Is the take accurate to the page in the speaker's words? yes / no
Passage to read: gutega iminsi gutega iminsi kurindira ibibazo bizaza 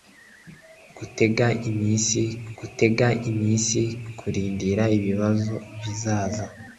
yes